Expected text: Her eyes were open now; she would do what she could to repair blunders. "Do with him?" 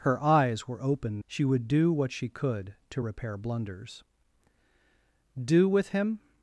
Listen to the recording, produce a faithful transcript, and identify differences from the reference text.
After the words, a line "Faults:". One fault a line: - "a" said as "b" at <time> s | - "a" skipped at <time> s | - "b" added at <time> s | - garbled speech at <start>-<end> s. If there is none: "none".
Her eyes were open; she would do what she could to repair blunders. "Do with him?"
Faults:
- "now" skipped at 1.2 s